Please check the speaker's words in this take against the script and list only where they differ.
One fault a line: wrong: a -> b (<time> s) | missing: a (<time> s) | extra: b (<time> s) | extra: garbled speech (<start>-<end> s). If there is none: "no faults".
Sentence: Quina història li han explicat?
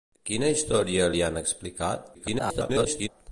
extra: garbled speech (2.1-3.1 s)